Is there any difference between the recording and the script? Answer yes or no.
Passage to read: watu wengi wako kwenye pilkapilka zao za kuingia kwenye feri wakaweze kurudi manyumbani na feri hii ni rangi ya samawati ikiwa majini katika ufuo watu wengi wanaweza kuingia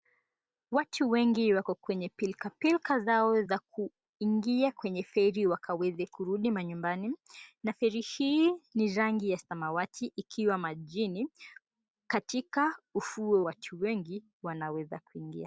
no